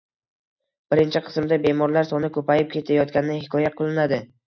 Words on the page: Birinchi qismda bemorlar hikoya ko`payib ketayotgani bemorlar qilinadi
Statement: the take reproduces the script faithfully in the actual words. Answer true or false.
false